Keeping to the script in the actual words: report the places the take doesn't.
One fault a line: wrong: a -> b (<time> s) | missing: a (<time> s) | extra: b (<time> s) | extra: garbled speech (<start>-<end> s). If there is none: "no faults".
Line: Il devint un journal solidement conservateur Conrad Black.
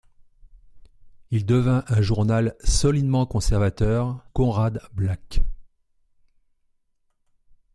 no faults